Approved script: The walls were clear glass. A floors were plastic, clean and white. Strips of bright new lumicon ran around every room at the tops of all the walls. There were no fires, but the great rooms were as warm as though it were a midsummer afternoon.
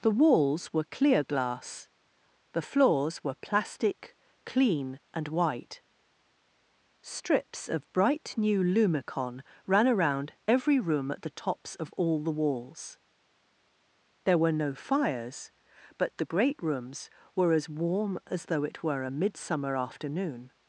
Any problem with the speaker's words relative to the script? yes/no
yes